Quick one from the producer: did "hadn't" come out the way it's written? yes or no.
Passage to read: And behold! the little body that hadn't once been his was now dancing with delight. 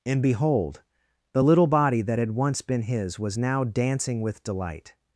no